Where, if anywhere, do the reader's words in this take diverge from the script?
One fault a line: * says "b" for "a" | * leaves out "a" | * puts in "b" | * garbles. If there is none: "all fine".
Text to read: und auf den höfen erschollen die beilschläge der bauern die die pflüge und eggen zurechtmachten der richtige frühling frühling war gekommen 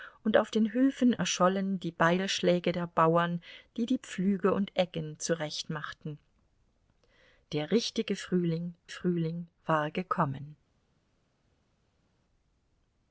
all fine